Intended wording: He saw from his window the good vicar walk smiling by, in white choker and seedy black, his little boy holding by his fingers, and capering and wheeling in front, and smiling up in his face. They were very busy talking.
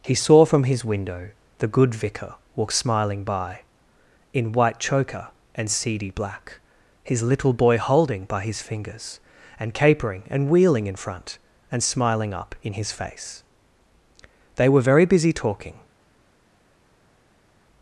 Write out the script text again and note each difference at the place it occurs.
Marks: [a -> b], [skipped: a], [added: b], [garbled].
He saw from his window the good vicar walk smiling by, in white choker and seedy black, his little boy holding by his fingers, and capering and wheeling in front, and smiling up in his face. They were very busy talking.